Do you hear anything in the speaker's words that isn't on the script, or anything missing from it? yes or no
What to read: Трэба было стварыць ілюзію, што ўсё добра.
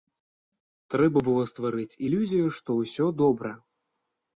no